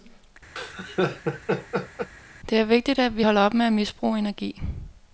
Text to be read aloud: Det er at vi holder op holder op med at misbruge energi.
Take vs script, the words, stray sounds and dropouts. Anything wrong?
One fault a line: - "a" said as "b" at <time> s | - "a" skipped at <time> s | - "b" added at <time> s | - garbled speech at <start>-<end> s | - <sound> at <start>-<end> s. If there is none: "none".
- laugh at 0.6-2.1 s
- "vigtigt" added at 2.6 s
- "holder op" skipped at 3.5 s